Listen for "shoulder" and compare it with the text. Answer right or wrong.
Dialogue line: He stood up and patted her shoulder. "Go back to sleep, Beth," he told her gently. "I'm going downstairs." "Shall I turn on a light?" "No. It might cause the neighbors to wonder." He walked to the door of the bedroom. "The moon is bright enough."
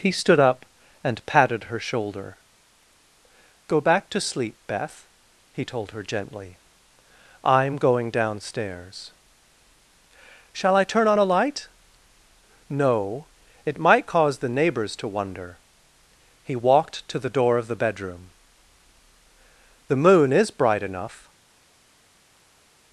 right